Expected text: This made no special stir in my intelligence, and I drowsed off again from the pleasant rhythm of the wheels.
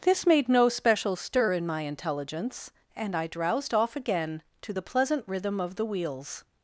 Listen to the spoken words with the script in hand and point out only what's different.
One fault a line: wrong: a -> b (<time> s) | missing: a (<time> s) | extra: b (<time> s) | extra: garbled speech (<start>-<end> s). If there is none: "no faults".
wrong: from -> to (4.6 s)